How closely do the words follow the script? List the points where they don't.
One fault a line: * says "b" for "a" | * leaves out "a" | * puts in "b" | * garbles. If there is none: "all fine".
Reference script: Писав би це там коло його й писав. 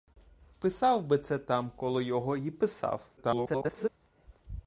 * garbles